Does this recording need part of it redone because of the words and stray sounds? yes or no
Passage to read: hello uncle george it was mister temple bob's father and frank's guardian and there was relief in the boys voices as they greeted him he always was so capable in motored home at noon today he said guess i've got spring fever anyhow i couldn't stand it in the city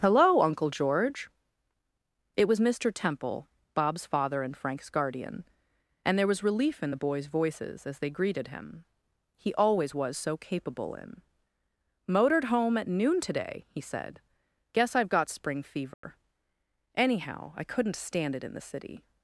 yes